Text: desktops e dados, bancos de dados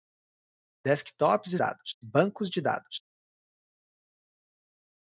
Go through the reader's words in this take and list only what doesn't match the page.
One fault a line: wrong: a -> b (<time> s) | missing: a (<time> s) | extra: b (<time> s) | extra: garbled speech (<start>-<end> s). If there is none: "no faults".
no faults